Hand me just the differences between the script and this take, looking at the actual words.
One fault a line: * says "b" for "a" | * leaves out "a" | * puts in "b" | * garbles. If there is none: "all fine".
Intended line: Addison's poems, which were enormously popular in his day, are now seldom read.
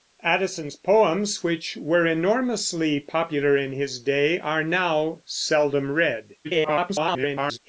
* garbles